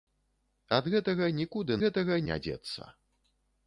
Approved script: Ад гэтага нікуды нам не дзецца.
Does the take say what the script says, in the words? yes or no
no